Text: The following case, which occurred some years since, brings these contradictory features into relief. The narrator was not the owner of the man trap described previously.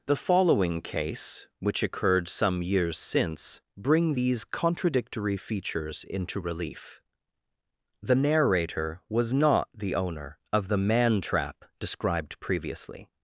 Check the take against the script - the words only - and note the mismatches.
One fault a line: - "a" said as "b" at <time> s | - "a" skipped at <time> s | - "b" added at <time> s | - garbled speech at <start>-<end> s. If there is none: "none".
- "brings" said as "bring" at 3.8 s